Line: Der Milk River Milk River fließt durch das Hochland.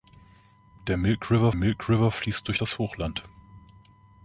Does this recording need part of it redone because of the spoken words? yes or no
no